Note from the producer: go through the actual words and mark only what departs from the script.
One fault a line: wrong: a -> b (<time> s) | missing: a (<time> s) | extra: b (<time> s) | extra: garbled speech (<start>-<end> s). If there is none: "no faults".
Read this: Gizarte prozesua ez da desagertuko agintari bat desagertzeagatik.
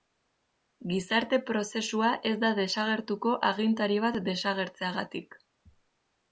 no faults